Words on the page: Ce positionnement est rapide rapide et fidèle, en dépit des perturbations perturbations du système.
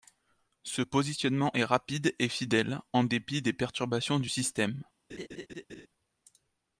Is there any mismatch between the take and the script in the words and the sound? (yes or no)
yes